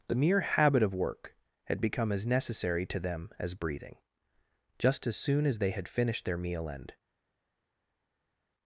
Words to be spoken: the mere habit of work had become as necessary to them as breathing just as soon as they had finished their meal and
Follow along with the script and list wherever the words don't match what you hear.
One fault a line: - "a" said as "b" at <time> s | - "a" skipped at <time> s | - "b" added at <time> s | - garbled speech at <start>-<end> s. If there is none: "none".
none